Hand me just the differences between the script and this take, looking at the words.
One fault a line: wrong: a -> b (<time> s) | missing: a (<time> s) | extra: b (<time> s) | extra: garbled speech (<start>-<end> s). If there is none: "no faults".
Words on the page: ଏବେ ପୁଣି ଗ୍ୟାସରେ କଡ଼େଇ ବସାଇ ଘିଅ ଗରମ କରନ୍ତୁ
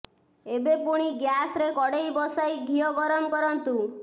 no faults